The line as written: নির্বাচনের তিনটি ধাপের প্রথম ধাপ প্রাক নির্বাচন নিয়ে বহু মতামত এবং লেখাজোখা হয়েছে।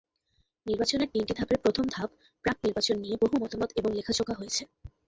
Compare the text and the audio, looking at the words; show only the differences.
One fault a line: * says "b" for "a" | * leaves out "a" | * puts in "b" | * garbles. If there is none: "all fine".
all fine